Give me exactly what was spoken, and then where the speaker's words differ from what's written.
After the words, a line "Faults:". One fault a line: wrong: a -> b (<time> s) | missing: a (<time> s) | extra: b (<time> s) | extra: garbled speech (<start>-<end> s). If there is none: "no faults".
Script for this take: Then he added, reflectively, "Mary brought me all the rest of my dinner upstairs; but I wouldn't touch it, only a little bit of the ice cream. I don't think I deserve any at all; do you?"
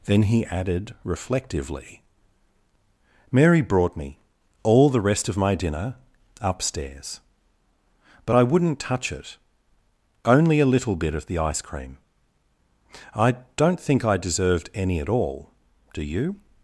Then he added, reflectively, "Mary brought me all the rest of my dinner upstairs; but I wouldn't touch it, only a little bit of the ice cream. I don't think I deserved any at all; do you?"
Faults:
wrong: deserve -> deserved (14.2 s)